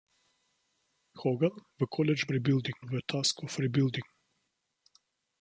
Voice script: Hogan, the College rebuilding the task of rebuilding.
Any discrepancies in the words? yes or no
no